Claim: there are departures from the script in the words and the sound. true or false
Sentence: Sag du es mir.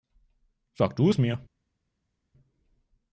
false